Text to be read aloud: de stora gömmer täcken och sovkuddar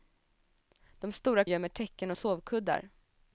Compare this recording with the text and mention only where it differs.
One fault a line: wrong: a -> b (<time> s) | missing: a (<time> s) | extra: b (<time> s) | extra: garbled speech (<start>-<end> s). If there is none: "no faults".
no faults